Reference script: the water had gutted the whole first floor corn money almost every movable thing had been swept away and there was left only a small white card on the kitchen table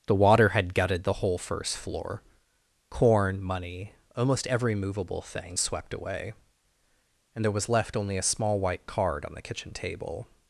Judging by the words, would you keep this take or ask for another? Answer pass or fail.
fail